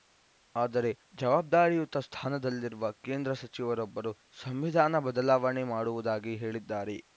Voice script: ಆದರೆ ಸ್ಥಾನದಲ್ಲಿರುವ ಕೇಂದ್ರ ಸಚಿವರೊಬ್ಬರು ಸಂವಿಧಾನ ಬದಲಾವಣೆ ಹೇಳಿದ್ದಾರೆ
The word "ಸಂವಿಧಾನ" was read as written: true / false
true